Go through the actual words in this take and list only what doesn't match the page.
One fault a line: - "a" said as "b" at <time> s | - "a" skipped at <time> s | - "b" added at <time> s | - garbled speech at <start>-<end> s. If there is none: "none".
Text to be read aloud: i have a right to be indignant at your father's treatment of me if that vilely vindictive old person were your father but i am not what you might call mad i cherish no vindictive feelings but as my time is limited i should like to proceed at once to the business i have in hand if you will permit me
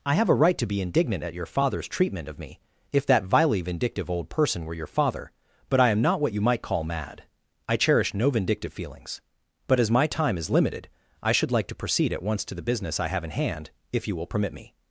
none